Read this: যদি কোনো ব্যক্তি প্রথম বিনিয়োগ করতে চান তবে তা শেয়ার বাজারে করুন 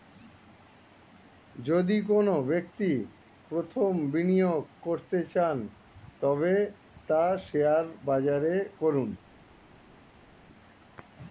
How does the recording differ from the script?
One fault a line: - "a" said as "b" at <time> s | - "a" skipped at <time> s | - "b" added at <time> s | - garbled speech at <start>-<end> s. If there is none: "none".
none